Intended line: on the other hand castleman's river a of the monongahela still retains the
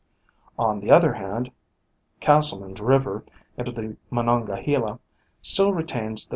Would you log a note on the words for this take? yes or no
no